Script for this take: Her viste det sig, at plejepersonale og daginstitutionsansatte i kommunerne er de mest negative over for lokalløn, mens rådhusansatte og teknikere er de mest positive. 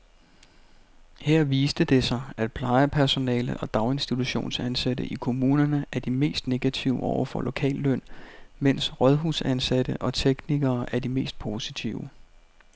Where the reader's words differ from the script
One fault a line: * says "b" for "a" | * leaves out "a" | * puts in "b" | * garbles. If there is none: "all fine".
all fine